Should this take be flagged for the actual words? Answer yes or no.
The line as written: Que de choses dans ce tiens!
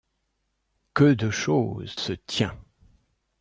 yes